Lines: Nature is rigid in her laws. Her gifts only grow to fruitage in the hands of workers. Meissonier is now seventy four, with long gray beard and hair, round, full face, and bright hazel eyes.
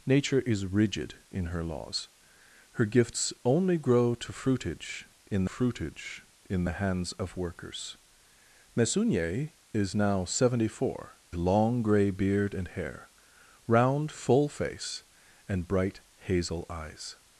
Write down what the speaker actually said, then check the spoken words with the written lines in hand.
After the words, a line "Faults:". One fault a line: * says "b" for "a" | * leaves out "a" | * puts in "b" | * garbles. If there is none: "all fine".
Nature is rigid in her laws. Her gifts only grow to fruitage in fruitage in the hands of workers. Meissonier is now seventy four, long gray beard and hair, round, full face, and bright hazel eyes.
Faults:
* puts in "fruitage in"
* leaves out "with"